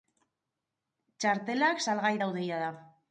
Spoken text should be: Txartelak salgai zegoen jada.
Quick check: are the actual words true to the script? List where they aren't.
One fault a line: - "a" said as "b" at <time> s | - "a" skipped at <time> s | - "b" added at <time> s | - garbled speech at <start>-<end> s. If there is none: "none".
- "zegoen" said as "daude" at 2.2 s